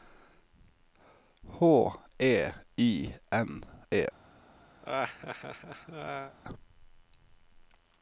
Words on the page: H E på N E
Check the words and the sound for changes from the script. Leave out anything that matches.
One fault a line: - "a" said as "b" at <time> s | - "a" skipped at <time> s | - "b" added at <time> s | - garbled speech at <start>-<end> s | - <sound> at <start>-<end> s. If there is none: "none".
- "på" said as "I" at 2.8 s
- laugh at 4.8-6.4 s